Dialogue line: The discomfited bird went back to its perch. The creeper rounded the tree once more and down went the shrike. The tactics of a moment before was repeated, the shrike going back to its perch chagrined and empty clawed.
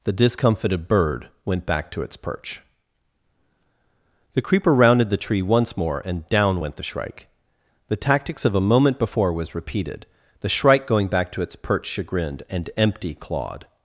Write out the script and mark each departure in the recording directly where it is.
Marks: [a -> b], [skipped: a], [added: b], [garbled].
The discomfited bird went back to its perch. The creeper rounded the tree once more and down went the shrike. The tactics of a moment before was repeated, the shrike going back to its perch chagrined and empty clawed.